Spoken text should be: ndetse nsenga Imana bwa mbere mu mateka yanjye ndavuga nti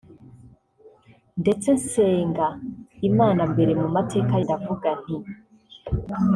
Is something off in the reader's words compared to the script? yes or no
yes